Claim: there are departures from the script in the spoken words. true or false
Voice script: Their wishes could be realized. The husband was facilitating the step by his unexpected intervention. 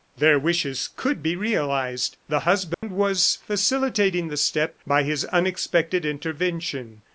false